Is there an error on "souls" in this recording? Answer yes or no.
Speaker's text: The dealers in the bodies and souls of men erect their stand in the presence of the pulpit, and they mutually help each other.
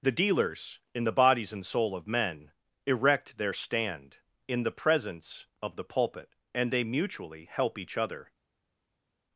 yes